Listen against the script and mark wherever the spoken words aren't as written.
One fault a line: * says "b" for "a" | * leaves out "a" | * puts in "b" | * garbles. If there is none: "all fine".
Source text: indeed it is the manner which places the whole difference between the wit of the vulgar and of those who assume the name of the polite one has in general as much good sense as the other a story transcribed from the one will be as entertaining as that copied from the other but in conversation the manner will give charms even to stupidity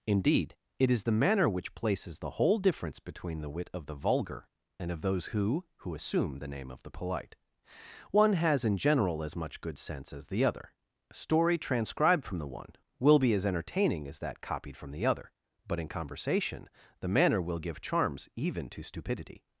* puts in "who"